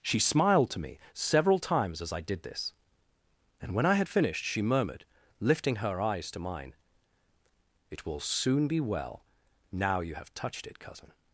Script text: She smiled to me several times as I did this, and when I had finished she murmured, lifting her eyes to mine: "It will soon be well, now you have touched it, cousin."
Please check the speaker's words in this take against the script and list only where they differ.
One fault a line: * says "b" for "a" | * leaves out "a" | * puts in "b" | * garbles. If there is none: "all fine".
all fine